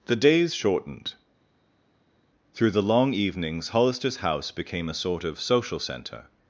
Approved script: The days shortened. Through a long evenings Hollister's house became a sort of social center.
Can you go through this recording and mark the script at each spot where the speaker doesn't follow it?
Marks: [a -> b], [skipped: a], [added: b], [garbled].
The days shortened. Through [a -> the] long evenings Hollister's house became a sort of social center.